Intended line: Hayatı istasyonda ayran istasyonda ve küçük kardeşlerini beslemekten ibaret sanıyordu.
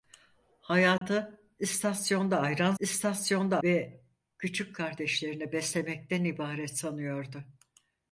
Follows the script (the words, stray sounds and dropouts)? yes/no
no